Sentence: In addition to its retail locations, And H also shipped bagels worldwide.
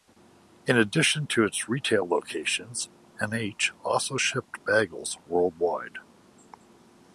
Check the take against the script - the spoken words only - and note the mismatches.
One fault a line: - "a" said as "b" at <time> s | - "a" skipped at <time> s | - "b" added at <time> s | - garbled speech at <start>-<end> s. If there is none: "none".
none